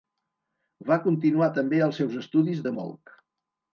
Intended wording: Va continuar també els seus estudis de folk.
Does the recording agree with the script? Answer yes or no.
yes